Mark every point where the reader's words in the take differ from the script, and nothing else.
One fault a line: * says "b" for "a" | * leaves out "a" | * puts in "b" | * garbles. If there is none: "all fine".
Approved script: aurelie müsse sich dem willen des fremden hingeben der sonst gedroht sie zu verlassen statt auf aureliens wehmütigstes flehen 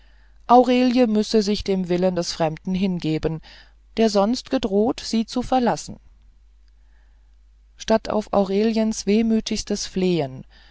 all fine